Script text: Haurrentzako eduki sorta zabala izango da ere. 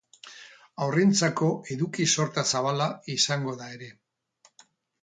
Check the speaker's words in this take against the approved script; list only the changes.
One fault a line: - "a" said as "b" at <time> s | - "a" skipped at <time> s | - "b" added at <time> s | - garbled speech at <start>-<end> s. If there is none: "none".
none